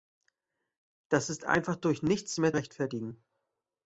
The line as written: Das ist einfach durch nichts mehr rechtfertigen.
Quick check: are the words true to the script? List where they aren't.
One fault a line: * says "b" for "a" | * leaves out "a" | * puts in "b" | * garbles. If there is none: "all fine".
all fine